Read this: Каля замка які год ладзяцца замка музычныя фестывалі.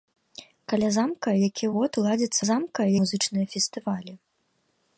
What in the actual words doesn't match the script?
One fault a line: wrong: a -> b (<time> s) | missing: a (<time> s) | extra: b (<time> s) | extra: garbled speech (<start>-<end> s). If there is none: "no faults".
no faults